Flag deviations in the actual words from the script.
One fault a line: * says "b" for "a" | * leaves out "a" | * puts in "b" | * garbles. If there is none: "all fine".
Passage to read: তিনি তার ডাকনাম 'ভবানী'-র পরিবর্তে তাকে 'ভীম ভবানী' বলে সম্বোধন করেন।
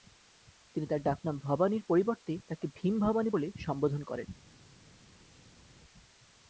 all fine